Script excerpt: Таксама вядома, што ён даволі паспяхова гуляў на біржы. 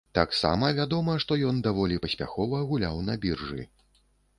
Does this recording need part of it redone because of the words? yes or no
no